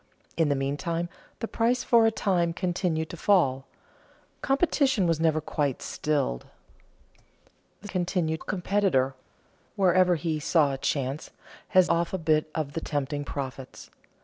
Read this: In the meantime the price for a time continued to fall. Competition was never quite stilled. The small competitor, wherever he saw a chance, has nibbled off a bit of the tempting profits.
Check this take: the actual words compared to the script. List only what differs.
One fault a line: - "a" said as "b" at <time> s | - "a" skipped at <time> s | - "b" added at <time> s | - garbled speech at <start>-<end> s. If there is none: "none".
- "small" said as "continued" at 7.9 s
- "nibbled" skipped at 11.9 s